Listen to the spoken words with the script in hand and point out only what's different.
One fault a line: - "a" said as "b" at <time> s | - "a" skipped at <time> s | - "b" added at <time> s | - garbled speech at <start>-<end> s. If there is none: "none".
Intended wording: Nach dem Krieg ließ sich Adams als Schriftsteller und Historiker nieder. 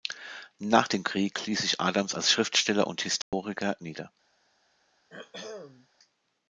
none